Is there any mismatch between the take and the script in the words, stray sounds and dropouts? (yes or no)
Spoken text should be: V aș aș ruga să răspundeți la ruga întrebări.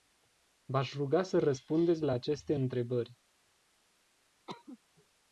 yes